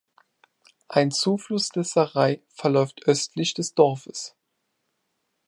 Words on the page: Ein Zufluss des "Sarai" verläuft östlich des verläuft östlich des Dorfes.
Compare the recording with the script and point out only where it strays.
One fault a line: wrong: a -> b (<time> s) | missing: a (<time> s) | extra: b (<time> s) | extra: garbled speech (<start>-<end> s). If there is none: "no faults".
missing: verläuft östlich des (3.7 s)